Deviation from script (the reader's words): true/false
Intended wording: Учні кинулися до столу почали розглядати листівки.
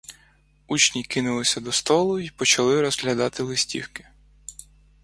true